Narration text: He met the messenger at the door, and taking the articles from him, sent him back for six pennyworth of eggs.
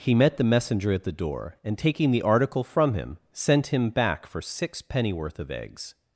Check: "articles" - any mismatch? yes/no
yes